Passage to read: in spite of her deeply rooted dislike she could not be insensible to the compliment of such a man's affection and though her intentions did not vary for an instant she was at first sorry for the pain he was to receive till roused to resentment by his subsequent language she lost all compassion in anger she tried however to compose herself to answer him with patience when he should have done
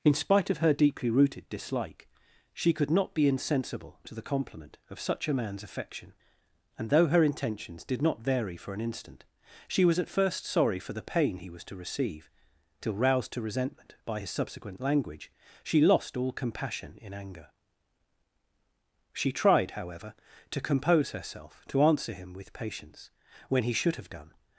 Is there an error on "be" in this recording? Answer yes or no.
no